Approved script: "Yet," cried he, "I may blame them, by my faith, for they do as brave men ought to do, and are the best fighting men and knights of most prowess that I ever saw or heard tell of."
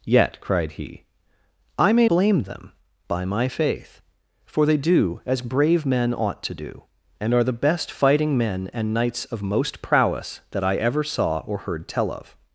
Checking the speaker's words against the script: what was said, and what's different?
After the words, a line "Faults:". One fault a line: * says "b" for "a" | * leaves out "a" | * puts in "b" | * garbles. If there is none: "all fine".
"Yet," cried he, "I may blame them, by my faith, for they do as brave men ought to do, and are the best fighting men and knights of most prowess that I ever saw or heard tell of."
Faults:
all fine